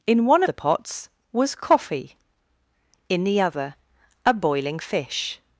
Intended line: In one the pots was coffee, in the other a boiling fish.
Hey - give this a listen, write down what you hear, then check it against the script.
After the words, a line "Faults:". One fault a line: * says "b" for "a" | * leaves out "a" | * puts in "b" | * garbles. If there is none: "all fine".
In one the pots was coffee, in the other a boiling fish.
Faults:
all fine